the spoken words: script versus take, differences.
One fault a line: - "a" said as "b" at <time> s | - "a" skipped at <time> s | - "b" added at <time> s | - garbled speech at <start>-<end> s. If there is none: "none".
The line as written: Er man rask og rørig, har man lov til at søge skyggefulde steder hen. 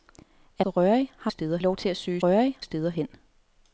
- "man rask" skipped at 0.7 s
- "man" said as "steder" at 1.3 s
- "skyggefulde" said as "rørig" at 2.2 s